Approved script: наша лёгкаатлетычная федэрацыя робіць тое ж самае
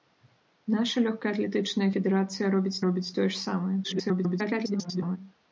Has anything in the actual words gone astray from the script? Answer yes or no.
yes